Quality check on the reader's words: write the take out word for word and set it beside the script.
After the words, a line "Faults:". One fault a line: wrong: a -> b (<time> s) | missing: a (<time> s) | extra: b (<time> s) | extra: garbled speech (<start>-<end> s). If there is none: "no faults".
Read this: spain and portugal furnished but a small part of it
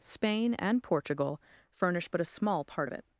spain and portugal furnish but a small part of it
Faults:
wrong: furnished -> furnish (1.7 s)